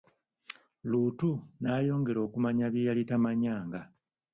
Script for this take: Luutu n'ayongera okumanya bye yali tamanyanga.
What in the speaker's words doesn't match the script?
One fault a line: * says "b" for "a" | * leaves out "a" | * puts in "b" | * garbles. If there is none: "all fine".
all fine